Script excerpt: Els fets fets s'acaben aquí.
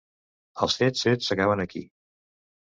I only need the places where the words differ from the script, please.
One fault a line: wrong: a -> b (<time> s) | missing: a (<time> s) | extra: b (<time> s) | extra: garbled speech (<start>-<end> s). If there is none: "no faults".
no faults